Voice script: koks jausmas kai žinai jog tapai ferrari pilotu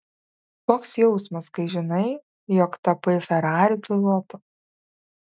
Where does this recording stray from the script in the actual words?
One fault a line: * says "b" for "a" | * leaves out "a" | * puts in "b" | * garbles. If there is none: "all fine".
all fine